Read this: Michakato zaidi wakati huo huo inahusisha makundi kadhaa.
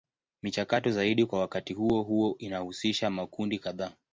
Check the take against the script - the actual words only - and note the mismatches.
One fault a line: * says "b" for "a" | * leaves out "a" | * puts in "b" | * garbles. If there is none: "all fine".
* puts in "kwa"